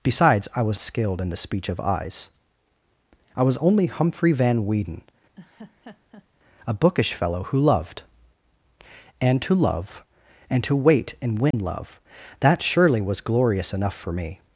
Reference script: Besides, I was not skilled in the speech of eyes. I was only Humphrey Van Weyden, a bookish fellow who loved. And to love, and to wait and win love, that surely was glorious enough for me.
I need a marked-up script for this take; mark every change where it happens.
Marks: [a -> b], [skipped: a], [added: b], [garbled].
Besides, I was [skipped: not] skilled in the speech of eyes. I was only Humphrey Van Weyden, a bookish fellow who loved. And to love, and to wait and win love, that surely was glorious enough for me.